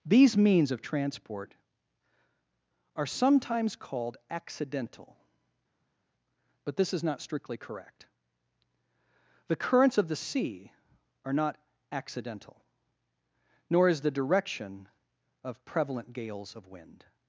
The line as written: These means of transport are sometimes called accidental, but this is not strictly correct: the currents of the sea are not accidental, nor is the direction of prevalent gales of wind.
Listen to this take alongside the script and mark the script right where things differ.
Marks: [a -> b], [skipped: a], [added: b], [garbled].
These means of transport are sometimes called accidental, but this is not strictly correct: the currents of the sea are not accidental, nor is the direction of prevalent gales of wind.